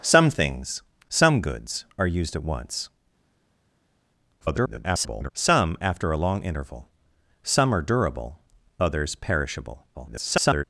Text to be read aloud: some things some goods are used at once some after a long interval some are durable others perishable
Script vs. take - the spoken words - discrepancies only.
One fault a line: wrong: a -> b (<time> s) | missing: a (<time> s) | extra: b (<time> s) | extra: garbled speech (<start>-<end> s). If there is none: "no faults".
extra: garbled speech (4.4-5.3 s)
extra: garbled speech (9.9-10.6 s)